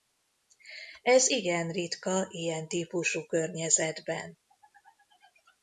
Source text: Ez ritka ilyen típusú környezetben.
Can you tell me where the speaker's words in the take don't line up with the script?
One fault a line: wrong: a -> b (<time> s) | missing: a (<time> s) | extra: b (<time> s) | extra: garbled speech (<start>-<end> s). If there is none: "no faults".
extra: igen (1.3 s)